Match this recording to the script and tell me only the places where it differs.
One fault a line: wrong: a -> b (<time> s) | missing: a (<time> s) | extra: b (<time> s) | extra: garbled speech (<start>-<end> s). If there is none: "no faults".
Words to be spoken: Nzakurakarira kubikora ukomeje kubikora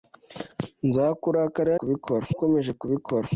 no faults